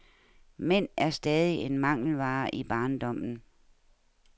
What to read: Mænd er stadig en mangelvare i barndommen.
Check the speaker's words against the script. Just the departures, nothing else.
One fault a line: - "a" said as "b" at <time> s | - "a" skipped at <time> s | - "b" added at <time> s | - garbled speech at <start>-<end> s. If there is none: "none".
none